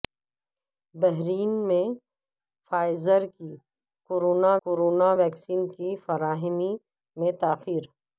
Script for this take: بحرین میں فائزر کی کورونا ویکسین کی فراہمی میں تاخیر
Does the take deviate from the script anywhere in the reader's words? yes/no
yes